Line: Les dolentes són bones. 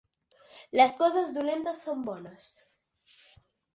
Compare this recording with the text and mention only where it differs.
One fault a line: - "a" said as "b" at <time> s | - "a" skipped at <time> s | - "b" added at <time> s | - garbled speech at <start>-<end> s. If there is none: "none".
- "coses" added at 1.0 s